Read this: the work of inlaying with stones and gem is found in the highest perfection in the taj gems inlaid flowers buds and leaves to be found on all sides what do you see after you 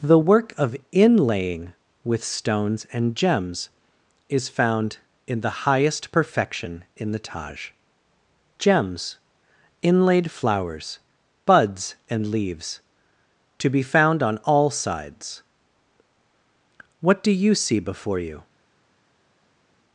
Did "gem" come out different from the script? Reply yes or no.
yes